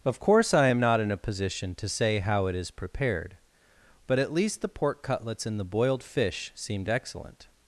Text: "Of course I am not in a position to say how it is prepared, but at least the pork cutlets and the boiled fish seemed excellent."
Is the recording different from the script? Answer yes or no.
no